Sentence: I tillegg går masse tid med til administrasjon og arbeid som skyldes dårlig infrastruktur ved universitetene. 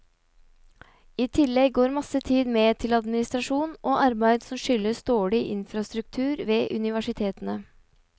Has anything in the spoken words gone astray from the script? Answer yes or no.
no